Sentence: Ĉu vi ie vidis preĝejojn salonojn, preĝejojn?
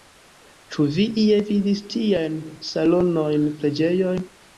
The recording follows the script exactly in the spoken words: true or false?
false